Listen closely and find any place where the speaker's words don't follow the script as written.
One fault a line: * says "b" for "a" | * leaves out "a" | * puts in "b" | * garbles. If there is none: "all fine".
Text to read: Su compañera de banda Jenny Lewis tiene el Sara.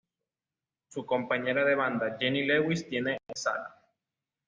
all fine